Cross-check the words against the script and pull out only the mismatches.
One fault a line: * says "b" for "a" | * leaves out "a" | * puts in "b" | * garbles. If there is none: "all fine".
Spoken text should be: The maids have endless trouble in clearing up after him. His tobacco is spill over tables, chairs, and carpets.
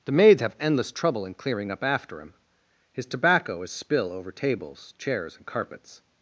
all fine